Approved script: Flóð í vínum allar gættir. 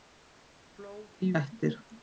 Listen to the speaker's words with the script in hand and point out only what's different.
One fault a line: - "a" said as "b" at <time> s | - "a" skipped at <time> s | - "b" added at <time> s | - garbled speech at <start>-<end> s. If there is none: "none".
- "vínum allar" skipped at 1.3 s